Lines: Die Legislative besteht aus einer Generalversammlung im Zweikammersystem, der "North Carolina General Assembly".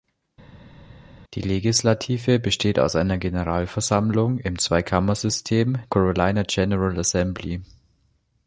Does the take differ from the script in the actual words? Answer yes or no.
yes